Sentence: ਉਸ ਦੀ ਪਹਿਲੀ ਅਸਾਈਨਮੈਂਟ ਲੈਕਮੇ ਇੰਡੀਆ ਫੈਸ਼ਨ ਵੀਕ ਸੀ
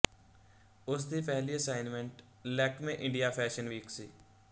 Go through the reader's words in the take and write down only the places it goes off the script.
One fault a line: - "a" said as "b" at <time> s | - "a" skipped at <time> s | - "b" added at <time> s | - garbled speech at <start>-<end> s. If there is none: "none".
none